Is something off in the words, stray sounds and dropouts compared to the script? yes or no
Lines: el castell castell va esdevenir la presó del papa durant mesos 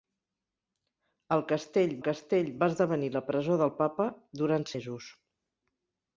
no